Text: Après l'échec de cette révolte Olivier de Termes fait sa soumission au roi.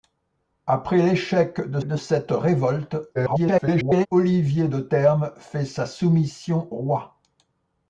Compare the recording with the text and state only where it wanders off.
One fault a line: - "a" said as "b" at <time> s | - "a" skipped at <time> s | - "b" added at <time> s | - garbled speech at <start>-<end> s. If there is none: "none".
- "de" added at 1.8 s
- garbled speech at 3.1-4.1 s
- "au" skipped at 6.7 s